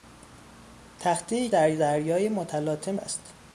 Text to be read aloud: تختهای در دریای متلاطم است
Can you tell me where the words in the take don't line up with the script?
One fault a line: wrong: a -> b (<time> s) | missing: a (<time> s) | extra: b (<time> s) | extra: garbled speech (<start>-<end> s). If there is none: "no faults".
no faults